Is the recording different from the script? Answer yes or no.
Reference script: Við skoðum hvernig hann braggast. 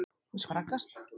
yes